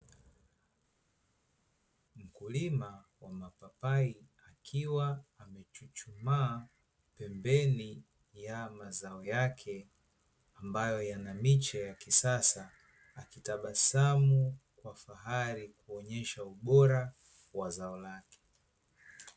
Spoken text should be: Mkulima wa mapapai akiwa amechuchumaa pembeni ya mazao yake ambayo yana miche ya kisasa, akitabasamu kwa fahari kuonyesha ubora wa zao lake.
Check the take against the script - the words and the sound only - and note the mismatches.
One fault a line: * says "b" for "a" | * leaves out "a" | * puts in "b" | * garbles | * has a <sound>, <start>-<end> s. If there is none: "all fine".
all fine